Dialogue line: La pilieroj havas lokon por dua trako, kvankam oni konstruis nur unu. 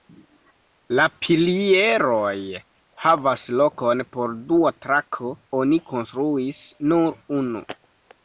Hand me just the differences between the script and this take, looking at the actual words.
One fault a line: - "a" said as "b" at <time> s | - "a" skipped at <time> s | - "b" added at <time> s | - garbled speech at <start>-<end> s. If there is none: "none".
- "kvankam" skipped at 5.3 s